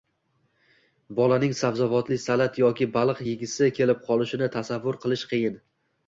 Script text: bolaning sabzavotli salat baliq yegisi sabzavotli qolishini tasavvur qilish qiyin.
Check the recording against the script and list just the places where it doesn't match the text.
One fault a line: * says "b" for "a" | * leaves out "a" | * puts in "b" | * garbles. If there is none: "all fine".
* puts in "yoki"
* says "kelib" for "sabzavotli"